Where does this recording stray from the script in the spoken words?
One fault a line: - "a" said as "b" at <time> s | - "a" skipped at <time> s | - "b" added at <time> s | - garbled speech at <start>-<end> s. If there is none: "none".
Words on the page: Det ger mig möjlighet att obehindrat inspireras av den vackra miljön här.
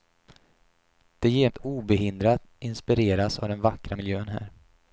- "mig möjlighet" skipped at 1.5 s